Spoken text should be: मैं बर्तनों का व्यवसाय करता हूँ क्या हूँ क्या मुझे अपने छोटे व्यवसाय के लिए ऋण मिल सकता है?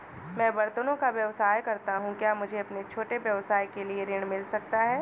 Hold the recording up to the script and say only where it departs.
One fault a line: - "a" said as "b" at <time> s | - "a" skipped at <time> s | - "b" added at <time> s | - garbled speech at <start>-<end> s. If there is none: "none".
- "हूँ क्या" skipped at 2.3 s